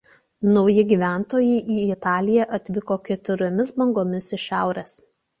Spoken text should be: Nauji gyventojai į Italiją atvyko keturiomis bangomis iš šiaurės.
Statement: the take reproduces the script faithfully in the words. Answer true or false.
true